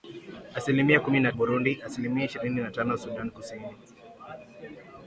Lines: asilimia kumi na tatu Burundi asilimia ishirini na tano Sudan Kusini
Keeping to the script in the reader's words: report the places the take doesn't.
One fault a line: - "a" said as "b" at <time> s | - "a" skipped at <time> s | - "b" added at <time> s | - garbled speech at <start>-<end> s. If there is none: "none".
- "tatu" skipped at 1.3 s